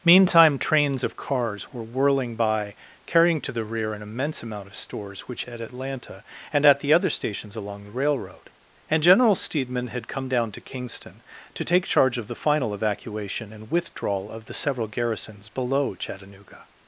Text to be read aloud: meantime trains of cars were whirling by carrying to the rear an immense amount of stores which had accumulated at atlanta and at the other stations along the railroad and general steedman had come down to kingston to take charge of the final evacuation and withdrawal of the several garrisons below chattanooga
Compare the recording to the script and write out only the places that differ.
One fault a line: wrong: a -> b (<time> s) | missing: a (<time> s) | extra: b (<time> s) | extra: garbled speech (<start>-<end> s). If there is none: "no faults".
missing: had accumulated (5.4 s)